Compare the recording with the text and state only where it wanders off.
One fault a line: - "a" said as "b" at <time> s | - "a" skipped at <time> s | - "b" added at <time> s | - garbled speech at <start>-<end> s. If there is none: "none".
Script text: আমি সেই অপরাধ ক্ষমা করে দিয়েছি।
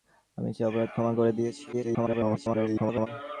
- garbled speech at 1.7-3.1 s